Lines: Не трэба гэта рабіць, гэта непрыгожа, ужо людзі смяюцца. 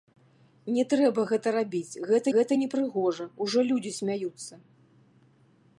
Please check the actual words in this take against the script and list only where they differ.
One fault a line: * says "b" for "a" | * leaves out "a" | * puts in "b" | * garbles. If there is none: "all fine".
* puts in "гэта"